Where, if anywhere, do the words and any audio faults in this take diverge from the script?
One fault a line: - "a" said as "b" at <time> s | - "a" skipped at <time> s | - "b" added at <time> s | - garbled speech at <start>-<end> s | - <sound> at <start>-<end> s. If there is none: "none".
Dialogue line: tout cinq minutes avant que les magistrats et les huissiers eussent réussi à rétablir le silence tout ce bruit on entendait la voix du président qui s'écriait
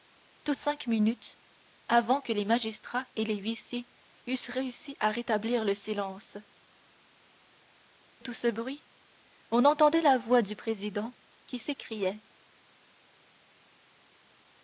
none